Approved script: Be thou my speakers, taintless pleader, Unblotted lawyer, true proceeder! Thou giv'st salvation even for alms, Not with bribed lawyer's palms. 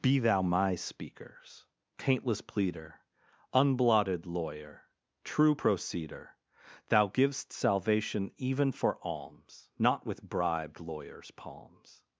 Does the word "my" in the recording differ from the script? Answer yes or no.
no